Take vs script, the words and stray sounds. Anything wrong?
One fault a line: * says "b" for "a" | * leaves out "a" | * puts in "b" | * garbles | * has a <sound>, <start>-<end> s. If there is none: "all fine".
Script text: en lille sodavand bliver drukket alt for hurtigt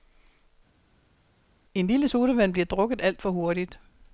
all fine